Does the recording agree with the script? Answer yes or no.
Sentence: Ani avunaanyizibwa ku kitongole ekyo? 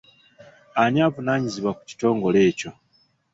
yes